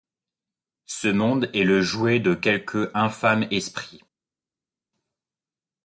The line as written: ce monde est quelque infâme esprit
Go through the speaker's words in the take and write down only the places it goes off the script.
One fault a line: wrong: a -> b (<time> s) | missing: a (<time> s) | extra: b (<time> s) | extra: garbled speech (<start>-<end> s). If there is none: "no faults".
extra: le jouet de (1.6 s)